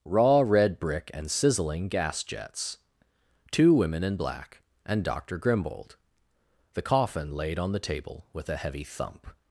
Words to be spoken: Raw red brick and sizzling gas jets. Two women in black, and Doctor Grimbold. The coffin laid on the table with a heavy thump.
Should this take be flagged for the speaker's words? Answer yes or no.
no